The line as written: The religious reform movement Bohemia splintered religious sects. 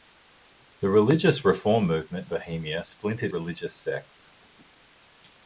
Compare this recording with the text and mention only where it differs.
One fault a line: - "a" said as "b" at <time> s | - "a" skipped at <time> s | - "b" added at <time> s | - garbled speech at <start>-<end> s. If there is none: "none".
none